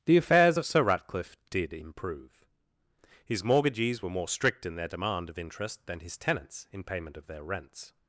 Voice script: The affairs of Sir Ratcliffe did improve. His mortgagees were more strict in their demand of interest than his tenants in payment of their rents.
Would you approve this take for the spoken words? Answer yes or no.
yes